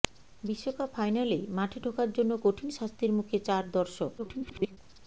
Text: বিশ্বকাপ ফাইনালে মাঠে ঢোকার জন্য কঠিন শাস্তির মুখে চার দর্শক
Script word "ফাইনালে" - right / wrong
right